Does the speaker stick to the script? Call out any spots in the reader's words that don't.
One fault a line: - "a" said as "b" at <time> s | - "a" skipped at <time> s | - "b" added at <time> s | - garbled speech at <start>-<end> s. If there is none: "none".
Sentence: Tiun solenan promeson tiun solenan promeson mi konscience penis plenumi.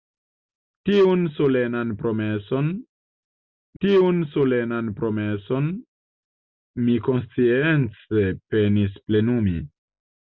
none